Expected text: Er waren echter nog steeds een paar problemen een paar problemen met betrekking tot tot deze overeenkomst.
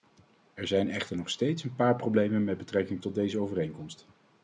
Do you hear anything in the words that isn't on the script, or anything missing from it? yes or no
yes